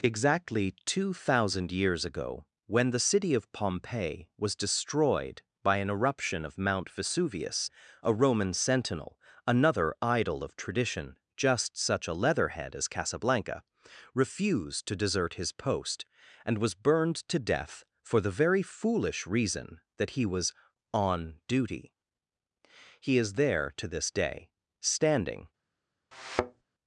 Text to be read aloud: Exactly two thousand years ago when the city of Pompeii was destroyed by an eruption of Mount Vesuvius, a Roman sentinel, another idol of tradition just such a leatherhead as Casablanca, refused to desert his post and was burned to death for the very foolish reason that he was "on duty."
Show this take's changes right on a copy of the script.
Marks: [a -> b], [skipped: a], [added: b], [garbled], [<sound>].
Exactly two thousand years ago when the city of Pompeii was destroyed by an eruption of Mount Vesuvius, a Roman sentinel, another idol of tradition just such a leatherhead as Casablanca, refused to desert his post and was burned to death for the very foolish reason that he was "on duty." [added: He is there to this day standing] [thud]